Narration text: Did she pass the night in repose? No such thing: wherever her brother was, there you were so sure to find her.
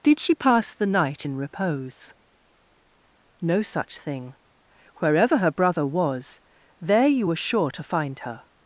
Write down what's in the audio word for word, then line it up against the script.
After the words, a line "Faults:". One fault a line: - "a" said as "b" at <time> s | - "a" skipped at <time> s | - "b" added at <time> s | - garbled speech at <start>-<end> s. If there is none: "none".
Did she pass the night in repose? No such thing: wherever her brother was, there you were sure to find her.
Faults:
- "so" skipped at 7.3 s